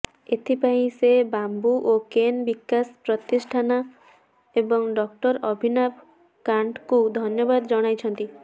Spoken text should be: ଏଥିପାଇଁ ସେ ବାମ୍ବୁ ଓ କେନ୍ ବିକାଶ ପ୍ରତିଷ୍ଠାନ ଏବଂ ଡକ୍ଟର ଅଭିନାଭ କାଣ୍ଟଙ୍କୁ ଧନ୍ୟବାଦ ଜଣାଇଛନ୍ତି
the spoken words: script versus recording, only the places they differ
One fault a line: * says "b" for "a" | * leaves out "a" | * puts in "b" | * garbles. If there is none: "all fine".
all fine